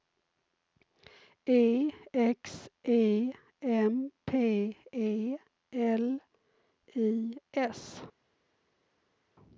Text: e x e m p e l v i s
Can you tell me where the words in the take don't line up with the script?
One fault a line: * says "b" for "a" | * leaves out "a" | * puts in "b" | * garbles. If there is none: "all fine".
* leaves out "v"